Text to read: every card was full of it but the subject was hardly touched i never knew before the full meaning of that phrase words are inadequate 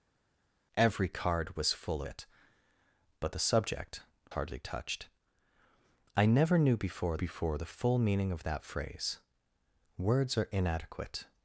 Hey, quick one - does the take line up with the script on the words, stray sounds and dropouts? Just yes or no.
no